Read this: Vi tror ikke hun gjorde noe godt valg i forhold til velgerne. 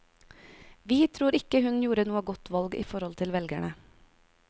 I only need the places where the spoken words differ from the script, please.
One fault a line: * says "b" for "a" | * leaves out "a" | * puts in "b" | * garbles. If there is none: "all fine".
all fine